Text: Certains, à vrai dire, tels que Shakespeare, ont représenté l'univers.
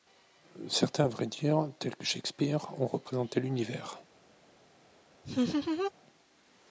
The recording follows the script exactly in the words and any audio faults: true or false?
false